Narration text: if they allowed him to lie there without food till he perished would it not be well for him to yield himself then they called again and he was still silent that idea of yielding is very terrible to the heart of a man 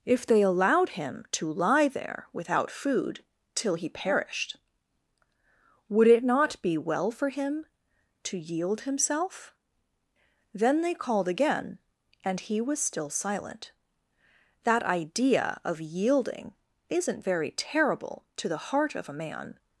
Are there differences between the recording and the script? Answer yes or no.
yes